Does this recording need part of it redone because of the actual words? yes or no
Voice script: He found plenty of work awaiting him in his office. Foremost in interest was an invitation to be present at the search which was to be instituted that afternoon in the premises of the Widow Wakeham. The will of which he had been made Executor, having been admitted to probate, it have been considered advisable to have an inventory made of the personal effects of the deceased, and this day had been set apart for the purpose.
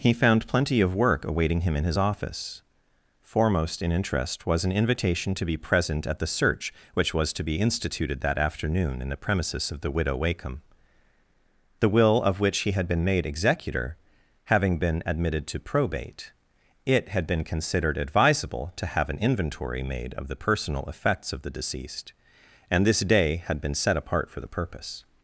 yes